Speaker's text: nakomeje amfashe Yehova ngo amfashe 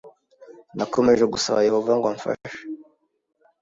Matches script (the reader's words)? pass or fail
fail